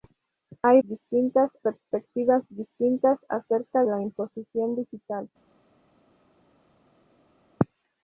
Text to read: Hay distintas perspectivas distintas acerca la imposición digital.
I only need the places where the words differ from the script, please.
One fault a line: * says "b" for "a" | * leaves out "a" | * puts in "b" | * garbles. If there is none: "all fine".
all fine